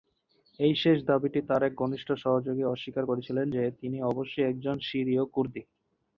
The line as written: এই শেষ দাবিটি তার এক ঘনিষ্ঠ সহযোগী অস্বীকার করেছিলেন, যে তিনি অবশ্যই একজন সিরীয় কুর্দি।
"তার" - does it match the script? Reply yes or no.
yes